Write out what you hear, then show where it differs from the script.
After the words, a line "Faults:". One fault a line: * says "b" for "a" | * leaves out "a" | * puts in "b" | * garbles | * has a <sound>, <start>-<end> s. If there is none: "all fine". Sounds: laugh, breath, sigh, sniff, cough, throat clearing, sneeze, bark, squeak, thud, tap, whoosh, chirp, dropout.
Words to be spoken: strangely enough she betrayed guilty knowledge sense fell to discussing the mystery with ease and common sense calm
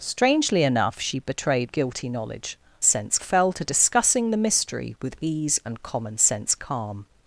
strangely enough she betrayed guilty knowledge sense fell to discussing the mystery with ease and common sense calm
Faults:
all fine